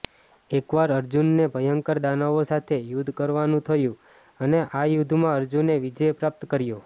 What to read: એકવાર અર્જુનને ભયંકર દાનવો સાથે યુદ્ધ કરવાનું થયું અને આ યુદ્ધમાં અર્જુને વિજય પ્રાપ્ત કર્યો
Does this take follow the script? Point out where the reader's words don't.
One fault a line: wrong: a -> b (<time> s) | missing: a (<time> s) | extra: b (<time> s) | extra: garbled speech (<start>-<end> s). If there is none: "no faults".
no faults